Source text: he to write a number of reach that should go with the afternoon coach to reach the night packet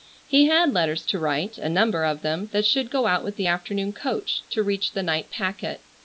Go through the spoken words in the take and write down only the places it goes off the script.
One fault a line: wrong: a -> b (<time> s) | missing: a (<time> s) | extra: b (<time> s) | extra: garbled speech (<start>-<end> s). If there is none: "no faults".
extra: had letters (0.5 s)
wrong: reach -> them (2.2 s)
extra: out (3.0 s)